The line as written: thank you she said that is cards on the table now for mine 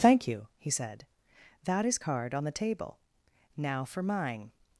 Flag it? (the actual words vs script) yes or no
yes